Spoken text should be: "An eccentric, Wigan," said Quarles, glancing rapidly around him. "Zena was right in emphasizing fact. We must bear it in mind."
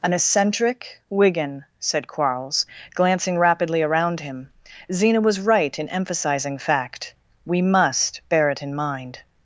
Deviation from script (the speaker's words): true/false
false